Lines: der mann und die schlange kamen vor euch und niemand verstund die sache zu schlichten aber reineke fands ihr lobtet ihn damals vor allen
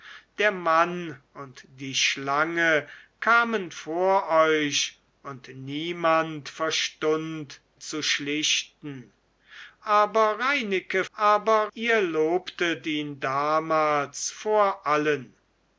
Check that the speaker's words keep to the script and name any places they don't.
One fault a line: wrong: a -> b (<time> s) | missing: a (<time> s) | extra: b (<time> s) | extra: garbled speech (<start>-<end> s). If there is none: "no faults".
missing: die sache (7.6 s)
wrong: fands -> aber (11.1 s)